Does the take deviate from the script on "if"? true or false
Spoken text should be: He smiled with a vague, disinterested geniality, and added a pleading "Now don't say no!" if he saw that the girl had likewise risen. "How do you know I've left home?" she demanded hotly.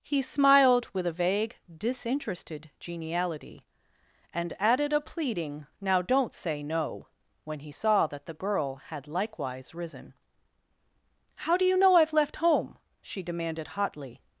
true